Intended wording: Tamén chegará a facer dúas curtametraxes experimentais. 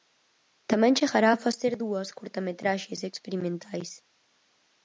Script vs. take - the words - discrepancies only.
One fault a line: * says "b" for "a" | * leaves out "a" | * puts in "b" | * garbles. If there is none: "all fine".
all fine